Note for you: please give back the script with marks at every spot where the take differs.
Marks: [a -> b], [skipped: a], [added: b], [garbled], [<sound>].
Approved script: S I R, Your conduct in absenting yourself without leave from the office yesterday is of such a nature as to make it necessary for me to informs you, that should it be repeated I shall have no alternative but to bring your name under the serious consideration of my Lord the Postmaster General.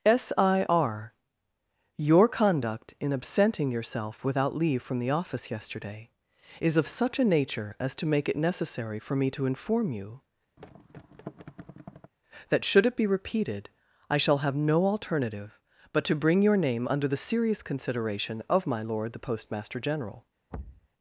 S I R, Your conduct in absenting yourself without leave from the office yesterday is of such a nature as to make it necessary for me to [informs -> inform] you, [thud] that should it be repeated I shall have no alternative but to bring your name under the serious consideration of my Lord the Postmaster General. [thud]